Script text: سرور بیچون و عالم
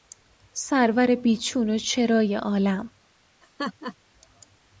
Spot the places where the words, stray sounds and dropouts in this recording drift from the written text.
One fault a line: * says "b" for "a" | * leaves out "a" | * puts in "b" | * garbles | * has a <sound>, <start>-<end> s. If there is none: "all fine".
* puts in "چرای"
* has a laugh, 3.4-4.0 s